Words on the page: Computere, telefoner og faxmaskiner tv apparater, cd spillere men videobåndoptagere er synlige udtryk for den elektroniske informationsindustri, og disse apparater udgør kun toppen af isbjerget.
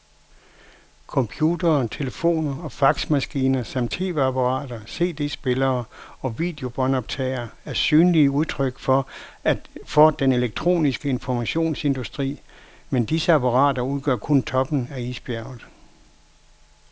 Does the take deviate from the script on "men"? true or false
true